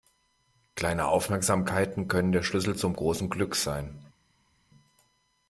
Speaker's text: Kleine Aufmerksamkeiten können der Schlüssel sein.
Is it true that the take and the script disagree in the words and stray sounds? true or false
true